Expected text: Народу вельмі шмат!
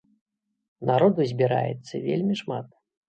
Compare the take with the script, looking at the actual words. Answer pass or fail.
fail